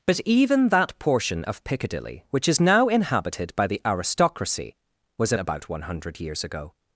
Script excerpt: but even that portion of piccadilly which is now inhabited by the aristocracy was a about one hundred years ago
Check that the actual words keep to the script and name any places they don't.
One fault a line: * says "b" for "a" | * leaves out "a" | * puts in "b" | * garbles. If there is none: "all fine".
all fine